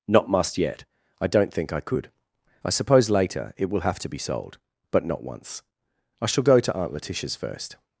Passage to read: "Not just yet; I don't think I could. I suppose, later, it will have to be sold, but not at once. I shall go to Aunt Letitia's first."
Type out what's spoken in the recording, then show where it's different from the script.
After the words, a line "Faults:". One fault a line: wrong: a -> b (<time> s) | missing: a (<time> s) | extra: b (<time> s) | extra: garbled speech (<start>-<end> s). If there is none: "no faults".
"Not must yet; I don't think I could. I suppose, later, it will have to be sold, but not once. I shall go to Aunt Letitia's first."
Faults:
wrong: just -> must (0.3 s)
missing: at (5.2 s)